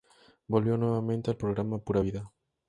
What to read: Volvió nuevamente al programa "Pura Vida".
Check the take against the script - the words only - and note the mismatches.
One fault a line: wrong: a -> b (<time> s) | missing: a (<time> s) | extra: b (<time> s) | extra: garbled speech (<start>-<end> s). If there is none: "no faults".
no faults